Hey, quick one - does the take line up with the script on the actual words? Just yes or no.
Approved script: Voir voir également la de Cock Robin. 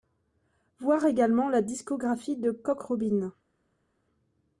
no